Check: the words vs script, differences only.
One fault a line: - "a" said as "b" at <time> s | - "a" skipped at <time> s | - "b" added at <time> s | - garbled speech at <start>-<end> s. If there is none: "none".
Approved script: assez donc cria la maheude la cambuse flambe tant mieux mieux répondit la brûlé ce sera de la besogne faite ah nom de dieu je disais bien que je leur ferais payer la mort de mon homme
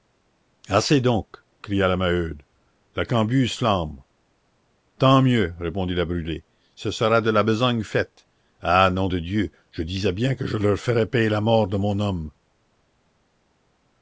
- "mieux" skipped at 5.5 s